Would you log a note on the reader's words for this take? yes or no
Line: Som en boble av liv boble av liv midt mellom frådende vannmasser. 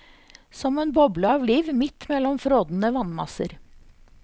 yes